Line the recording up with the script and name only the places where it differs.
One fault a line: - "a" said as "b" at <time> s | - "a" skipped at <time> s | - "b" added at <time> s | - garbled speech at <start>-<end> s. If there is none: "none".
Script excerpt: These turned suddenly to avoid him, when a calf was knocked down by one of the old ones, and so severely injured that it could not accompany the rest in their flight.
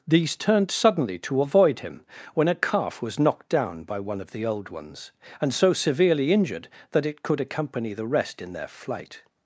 - "not" skipped at 7.4 s